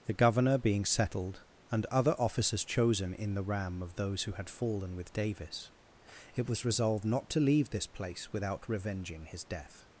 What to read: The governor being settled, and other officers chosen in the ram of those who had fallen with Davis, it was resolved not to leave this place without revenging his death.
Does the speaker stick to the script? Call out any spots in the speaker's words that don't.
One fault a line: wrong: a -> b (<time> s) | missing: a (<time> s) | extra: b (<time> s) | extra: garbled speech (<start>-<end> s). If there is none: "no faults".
no faults